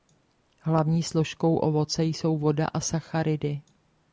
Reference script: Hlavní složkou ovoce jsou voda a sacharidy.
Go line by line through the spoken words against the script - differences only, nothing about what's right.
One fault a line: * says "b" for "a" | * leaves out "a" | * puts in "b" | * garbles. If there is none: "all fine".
all fine